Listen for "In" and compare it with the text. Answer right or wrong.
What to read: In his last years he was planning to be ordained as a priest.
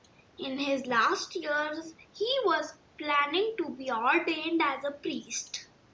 right